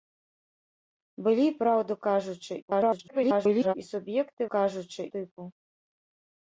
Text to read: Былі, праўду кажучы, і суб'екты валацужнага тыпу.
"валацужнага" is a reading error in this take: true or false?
true